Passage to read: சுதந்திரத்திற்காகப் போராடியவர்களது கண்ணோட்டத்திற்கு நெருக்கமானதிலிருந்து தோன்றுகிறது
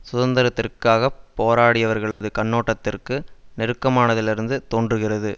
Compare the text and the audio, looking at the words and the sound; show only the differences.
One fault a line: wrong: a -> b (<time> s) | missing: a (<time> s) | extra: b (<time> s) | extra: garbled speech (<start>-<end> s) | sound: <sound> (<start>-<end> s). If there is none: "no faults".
sound: dropout (2.1-2.2 s)